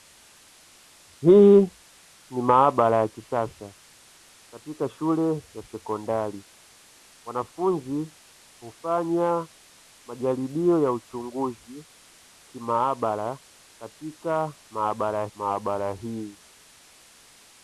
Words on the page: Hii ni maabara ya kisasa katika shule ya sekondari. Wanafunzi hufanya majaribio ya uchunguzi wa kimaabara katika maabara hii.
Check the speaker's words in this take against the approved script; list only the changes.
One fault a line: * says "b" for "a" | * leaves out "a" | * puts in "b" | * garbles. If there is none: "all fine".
* leaves out "wa"
* puts in "maabara"